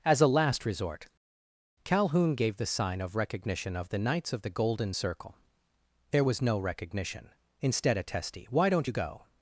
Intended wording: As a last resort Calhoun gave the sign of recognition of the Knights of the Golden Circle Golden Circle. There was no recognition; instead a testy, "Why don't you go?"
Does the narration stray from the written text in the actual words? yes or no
yes